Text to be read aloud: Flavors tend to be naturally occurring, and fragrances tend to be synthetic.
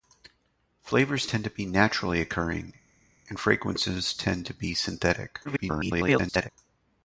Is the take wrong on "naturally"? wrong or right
right